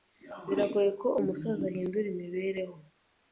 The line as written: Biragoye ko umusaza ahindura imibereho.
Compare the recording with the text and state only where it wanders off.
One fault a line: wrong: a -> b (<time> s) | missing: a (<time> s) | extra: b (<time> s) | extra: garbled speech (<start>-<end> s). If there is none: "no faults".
no faults